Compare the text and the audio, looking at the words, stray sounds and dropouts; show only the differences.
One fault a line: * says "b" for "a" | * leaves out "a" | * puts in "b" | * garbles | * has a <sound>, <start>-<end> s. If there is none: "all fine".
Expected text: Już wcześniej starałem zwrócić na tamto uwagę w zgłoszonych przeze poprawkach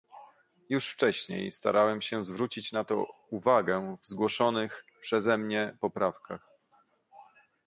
* puts in "się"
* says "to" for "tamto"
* puts in "mnie"